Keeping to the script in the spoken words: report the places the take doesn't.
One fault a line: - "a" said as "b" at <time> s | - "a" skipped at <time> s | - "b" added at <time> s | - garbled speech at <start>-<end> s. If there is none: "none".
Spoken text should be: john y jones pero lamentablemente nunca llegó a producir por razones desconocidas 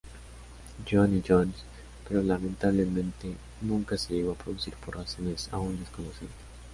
- "se" added at 4.0 s
- "aún" added at 5.5 s